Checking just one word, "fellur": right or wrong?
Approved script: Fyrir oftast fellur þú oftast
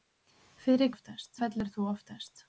right